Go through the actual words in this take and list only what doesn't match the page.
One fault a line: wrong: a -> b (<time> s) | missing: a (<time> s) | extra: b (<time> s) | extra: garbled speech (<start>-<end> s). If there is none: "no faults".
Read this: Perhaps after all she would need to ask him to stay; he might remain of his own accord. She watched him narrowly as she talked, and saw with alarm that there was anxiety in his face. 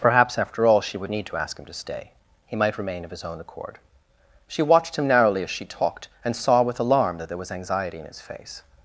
no faults